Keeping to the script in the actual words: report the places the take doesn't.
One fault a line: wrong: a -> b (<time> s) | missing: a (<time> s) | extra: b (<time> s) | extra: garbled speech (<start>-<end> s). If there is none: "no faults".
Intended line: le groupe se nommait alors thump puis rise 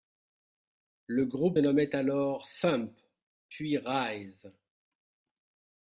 missing: se (1.6 s)